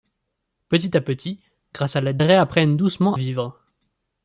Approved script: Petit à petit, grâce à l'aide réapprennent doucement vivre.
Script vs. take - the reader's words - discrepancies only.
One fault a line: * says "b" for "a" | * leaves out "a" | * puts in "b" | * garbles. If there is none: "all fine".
all fine